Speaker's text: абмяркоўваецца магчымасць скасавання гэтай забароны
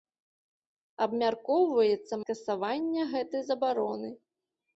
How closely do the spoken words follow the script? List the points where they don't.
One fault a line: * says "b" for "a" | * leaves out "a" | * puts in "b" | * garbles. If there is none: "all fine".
* leaves out "магчымасць"